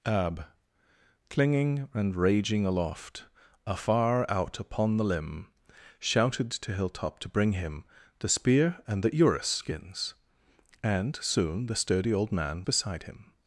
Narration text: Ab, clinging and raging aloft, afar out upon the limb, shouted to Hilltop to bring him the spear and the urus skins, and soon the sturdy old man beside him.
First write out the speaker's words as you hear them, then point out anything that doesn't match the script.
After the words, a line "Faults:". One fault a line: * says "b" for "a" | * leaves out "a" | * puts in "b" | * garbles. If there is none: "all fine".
Ab, clinging and raging aloft, afar out upon the limb, shouted to Hilltop to bring him the spear and the urus skins, and soon the sturdy old man beside him.
Faults:
all fine